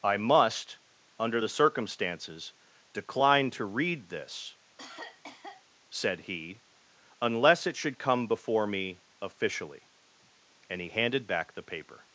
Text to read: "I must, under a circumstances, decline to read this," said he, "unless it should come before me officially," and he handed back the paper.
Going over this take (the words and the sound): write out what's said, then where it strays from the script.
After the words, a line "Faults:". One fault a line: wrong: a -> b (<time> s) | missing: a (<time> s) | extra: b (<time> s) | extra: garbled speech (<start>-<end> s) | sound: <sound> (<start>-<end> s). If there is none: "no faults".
"I must, under the circumstances, decline to read this," said he, "unless it should come before me officially," and he handed back the paper.
Faults:
wrong: a -> the (1.4 s)
sound: cough (4.8-5.6 s)